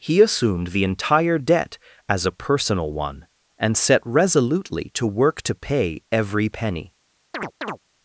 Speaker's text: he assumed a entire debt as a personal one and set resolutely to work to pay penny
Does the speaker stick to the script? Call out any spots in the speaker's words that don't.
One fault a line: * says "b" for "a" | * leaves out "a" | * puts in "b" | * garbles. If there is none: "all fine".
* says "the" for "a"
* puts in "every"